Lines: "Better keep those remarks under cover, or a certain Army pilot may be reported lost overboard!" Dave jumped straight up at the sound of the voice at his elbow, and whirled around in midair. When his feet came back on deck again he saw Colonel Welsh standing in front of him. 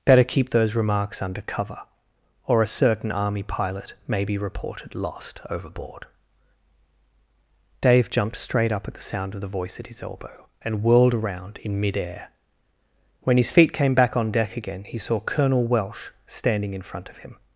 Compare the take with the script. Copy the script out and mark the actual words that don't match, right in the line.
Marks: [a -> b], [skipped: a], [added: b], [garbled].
"Better keep those remarks under cover, or a certain Army pilot may be reported lost overboard!" Dave jumped straight up at the sound of the voice at his elbow, and whirled around in midair. When his feet came back on deck again he saw Colonel Welsh standing in front of him.